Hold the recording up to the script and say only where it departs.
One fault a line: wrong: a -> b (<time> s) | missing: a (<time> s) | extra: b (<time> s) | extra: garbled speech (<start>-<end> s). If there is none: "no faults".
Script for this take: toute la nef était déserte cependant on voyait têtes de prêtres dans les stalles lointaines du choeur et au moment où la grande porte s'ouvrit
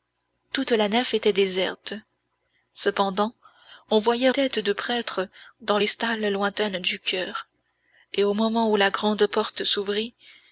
no faults